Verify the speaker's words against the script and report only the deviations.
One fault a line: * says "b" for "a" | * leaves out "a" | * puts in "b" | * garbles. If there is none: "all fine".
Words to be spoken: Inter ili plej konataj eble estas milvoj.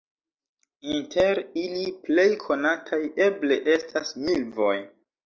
all fine